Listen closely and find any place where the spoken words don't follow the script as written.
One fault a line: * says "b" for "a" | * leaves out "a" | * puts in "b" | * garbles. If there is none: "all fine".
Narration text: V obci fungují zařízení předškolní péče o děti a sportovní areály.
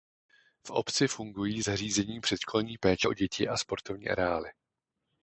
all fine